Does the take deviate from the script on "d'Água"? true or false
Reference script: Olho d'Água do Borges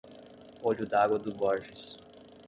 false